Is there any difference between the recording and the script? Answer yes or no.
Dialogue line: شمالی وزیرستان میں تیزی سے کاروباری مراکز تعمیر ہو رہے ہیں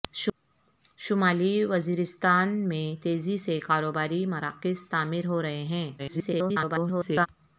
yes